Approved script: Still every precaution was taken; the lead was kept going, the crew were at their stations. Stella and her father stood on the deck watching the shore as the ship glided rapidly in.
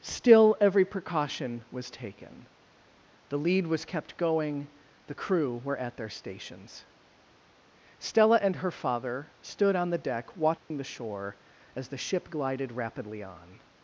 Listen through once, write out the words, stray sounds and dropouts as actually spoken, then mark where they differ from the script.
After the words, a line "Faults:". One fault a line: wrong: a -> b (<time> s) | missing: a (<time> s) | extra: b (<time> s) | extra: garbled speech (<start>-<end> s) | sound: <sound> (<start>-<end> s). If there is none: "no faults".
Still every precaution was taken; the lead was kept going, the crew were at their stations. Stella and her father stood on the deck watching the shore as the ship glided rapidly on.
Faults:
sound: dropout (10.6-10.7 s)
wrong: in -> on (13.2 s)